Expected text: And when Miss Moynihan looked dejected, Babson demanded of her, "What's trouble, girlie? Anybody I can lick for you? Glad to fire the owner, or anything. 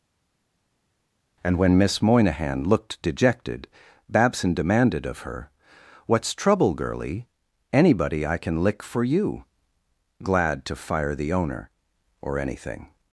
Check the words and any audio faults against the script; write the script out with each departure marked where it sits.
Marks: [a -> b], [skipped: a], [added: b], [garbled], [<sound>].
And when Miss Moynihan looked dejected, Babson demanded of her, "What's trouble, girlie? Anybody I can lick for you? Glad to fire the owner, or anything.